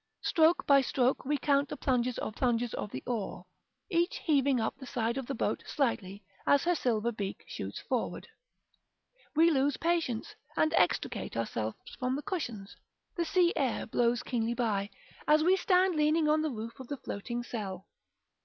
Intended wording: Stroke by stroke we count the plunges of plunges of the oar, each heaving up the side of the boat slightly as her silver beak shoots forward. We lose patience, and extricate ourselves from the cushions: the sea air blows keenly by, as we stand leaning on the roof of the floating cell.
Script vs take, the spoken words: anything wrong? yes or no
no